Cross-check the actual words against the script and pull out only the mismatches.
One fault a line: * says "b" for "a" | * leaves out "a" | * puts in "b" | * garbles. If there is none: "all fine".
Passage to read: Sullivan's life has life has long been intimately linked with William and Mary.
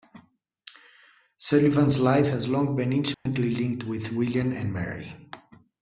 * leaves out "life has"